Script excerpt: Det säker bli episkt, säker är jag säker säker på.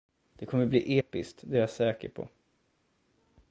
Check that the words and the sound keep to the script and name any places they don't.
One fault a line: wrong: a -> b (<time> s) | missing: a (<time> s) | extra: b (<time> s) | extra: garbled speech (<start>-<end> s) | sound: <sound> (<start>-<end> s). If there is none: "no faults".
wrong: säker -> kommer (0.5 s)
wrong: säker -> det (1.4 s)
missing: säker (2.1 s)